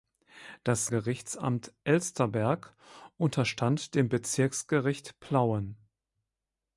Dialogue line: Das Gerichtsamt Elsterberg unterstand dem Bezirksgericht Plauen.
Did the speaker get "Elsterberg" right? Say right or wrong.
right